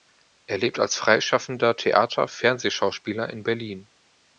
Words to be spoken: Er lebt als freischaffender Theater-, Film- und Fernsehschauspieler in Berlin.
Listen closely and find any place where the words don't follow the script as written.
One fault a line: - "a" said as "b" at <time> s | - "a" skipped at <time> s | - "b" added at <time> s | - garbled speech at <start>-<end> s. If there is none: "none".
- "Film und" skipped at 2.3 s